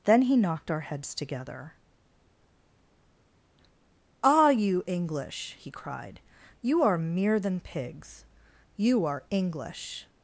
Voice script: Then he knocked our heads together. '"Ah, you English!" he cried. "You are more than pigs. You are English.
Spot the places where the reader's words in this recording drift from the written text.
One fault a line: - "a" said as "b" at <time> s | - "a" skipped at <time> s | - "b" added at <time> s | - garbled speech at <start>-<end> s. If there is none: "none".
- "more" said as "mere" at 7.0 s